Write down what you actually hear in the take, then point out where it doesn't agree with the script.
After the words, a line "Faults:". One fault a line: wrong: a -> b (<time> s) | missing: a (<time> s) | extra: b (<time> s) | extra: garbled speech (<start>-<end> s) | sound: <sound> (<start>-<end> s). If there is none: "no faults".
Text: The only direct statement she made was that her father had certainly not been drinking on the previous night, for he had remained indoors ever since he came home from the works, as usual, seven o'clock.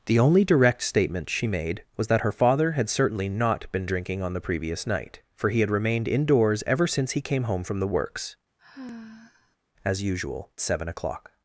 The only direct statement she made was that her father had certainly not been drinking on the previous night, for he had remained indoors ever since he came home from the works, as usual, seven o'clock.
Faults:
sound: sigh (8.6-9.6 s)